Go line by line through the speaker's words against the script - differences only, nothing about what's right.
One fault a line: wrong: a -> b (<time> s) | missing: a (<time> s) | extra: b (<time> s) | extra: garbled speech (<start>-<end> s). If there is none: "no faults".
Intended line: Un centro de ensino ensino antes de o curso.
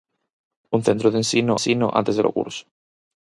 no faults